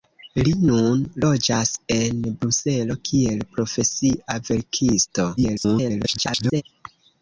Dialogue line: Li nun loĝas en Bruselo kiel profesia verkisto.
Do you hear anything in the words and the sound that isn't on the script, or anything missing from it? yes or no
yes